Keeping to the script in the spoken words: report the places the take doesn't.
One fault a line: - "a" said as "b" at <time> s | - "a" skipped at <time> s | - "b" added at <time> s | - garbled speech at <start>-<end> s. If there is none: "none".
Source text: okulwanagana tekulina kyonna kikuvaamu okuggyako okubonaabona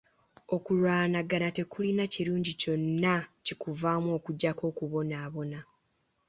- "kirungi" added at 2.1 s